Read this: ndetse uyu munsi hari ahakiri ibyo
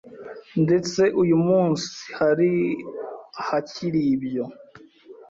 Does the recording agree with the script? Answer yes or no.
yes